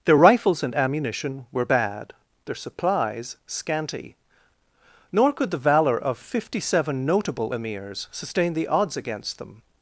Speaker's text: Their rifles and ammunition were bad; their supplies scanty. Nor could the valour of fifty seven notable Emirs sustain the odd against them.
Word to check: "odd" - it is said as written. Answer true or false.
false